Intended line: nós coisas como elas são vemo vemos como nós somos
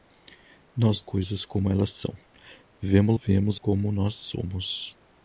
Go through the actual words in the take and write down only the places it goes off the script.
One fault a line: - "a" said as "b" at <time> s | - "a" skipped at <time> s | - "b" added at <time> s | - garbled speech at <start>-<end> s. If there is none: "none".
none